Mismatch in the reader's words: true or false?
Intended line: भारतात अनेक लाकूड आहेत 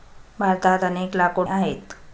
false